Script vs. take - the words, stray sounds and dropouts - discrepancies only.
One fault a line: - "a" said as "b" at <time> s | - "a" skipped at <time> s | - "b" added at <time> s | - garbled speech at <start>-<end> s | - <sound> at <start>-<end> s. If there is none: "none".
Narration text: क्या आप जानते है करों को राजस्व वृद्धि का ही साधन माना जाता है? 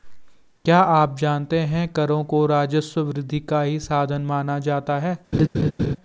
- laugh at 5.3-6.0 s